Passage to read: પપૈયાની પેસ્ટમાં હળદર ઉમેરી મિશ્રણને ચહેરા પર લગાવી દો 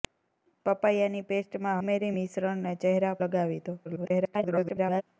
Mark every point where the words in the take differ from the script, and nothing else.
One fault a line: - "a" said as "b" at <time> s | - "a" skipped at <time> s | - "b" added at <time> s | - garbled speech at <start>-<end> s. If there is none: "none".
- "હળદર" skipped at 1.8 s
- "પર" skipped at 3.1 s
- garbled speech at 3.8-5.0 s